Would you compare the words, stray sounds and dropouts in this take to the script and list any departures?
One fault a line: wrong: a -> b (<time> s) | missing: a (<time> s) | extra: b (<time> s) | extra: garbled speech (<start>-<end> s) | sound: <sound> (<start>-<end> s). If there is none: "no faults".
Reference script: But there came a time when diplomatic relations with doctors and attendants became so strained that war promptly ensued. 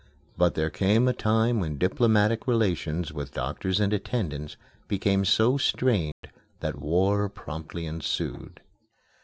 sound: dropout (6.1-6.2 s)